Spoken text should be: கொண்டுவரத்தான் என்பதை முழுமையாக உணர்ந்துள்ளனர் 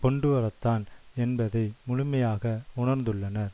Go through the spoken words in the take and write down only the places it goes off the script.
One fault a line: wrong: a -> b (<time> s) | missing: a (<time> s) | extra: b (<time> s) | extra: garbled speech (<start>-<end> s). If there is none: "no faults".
no faults